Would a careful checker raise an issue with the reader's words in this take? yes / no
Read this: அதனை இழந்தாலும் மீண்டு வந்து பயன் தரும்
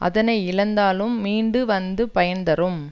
no